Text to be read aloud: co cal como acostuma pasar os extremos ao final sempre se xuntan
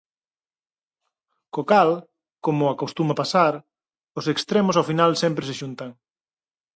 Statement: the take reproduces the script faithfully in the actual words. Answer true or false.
true